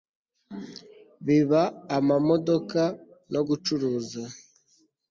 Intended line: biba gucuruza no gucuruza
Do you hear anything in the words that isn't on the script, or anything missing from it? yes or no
yes